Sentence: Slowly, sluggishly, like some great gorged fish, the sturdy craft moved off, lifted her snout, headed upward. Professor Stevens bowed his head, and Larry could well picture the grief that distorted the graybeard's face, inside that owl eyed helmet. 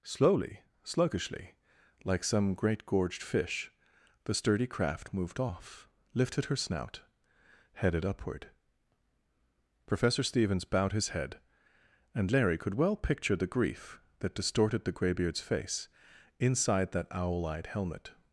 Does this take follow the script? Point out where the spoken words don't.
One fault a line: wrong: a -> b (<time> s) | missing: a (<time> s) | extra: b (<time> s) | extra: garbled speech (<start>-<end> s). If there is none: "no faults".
no faults